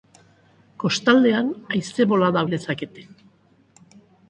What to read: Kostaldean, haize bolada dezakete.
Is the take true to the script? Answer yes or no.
yes